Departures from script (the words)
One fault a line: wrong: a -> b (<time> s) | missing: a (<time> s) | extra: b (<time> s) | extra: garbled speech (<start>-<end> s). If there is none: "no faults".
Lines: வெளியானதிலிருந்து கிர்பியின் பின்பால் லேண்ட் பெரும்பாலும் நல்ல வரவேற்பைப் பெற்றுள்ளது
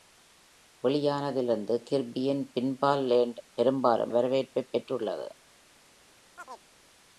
missing: நல்ல (4.1 s)